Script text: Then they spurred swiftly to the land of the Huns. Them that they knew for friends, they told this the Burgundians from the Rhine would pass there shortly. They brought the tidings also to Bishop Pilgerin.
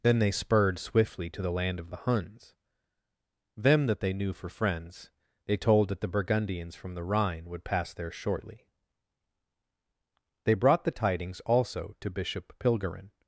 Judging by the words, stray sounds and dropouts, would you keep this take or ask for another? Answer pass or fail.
fail